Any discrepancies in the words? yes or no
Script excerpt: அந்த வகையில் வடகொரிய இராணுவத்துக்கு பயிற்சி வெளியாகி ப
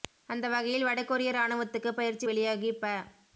no